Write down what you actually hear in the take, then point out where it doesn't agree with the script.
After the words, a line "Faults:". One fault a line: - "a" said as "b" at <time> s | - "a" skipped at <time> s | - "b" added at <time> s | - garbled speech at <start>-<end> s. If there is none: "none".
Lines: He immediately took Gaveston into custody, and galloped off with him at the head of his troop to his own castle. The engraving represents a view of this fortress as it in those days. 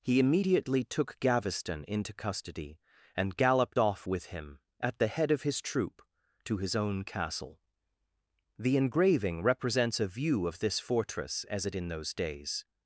He immediately took Gaveston into custody, and galloped off with him at the head of his troop to his own castle. The engraving represents a view of this fortress as it in those days.
Faults:
none